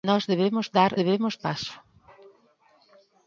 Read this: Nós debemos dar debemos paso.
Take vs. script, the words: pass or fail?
pass